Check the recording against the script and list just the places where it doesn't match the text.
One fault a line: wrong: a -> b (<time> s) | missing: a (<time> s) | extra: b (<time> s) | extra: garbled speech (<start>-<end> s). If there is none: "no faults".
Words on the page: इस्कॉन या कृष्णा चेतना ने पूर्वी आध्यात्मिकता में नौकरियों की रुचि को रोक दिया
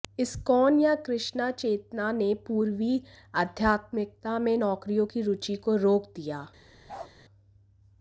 no faults